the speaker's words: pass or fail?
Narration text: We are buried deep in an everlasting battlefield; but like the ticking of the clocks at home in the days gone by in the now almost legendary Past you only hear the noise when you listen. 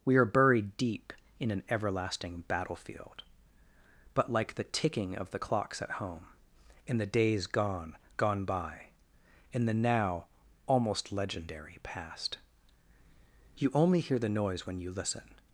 fail